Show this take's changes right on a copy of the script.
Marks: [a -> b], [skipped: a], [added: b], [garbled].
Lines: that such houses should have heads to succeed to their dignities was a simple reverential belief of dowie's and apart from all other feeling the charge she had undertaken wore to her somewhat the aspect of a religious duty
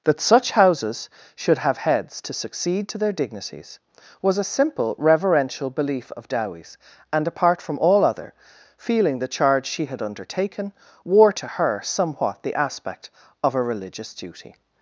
that such houses should have heads to succeed to their dignities was a simple reverential belief of dowie's and apart from all other feeling the charge she had undertaken wore to her somewhat the aspect of a religious duty